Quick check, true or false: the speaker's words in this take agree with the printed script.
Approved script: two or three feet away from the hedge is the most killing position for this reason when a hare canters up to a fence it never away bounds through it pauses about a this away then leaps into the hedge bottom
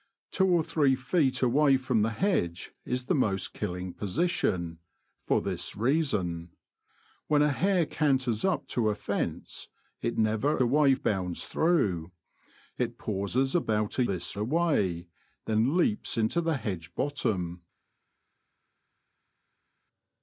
true